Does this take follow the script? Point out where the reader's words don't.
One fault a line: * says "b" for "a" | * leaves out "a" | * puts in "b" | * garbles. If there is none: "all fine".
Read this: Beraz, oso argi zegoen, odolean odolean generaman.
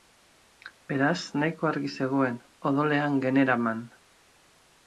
* says "nahiko" for "oso"
* leaves out "odolean"